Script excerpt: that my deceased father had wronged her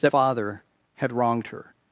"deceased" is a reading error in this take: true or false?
true